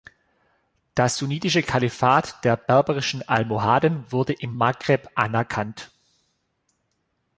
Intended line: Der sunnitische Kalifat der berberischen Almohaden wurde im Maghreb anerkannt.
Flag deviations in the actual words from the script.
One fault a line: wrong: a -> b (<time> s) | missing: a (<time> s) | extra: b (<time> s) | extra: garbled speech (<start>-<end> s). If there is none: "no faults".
wrong: Der -> Das (0.9 s)